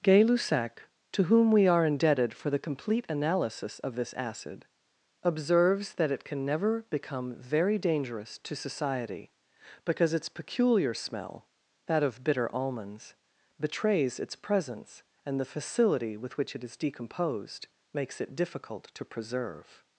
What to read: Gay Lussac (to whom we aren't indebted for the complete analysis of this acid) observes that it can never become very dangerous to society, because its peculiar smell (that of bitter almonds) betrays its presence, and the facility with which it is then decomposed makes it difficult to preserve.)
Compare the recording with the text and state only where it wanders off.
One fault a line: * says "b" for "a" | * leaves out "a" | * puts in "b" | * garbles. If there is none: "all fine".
* says "are" for "aren't"
* leaves out "then"